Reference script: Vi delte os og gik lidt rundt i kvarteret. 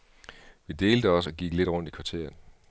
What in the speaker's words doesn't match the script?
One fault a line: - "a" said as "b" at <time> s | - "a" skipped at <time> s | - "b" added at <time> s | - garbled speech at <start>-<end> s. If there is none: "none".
none